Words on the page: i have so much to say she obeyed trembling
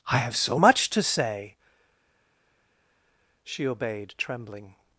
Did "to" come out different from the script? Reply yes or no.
no